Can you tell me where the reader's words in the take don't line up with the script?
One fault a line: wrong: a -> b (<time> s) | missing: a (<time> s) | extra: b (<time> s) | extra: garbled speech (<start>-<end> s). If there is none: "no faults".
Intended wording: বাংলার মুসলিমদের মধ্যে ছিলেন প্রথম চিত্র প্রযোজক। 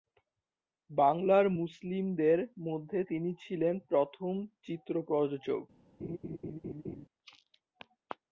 extra: তিনি (3.0 s)